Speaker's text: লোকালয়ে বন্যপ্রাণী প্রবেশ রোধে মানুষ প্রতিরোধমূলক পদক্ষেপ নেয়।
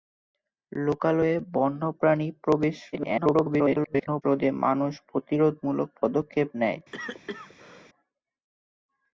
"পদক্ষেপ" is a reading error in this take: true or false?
false